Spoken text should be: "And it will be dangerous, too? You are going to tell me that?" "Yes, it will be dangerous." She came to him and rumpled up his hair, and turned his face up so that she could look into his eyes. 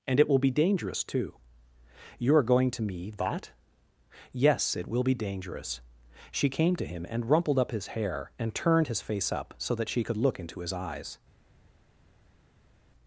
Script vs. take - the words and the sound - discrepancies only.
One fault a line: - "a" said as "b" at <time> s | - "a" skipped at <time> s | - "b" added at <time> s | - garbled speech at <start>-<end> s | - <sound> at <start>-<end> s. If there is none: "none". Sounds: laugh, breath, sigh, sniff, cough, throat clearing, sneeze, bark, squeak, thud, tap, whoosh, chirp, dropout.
- "tell" skipped at 2.8 s